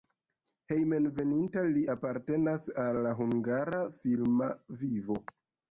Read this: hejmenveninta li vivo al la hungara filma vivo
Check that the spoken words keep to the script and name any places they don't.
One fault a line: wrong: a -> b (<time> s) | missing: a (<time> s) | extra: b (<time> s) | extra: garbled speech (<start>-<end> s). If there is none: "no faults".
wrong: vivo -> apartenas (1.9 s)